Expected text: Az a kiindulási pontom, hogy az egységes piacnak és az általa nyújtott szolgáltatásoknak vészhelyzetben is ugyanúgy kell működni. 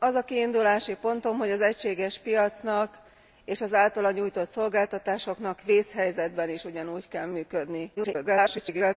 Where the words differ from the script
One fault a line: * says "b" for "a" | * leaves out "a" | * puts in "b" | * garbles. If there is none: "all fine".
* garbles